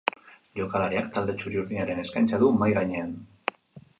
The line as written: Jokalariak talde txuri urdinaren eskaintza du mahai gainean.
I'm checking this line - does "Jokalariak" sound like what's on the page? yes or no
yes